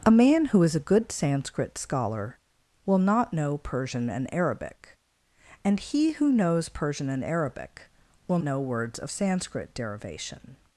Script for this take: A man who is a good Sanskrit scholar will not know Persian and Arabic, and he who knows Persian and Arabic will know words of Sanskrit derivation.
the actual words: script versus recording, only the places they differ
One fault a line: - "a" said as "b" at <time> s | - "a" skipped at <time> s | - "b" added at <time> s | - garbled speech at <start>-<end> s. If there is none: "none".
none